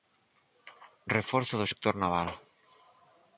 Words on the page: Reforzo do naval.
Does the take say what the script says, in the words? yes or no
no